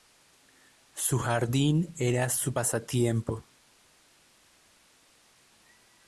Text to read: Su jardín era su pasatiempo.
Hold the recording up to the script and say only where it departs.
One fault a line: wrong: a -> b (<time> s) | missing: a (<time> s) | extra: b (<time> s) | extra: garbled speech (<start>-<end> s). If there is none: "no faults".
no faults